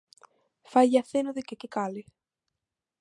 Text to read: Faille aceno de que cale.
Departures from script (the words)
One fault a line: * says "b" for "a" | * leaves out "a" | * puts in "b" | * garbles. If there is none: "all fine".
* puts in "que"